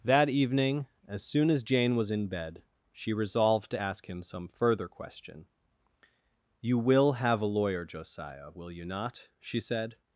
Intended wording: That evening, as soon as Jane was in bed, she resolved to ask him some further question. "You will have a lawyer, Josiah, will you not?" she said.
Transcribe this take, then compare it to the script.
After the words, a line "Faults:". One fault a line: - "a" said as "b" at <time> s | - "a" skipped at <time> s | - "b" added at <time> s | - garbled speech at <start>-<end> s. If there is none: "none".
That evening, as soon as Jane was in bed, she resolved to ask him some further question. "You will have a lawyer, Josiah, will you not?" she said.
Faults:
none